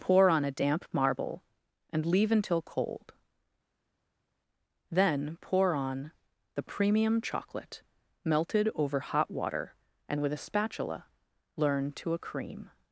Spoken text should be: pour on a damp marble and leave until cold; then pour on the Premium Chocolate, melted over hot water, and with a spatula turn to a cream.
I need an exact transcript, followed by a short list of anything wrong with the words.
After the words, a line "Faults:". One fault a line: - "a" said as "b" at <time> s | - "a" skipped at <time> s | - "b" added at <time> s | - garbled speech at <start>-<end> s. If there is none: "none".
pour on a damp marble and leave until cold; then pour on the Premium Chocolate, melted over hot water, and with a spatula learn to a cream.
Faults:
- "turn" said as "learn" at 11.6 s